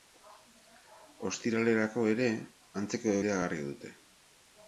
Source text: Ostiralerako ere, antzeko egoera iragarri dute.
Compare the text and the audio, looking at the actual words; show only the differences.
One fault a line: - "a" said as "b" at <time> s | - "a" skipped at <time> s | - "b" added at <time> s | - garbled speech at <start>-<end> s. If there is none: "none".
- "egoera" skipped at 3.2 s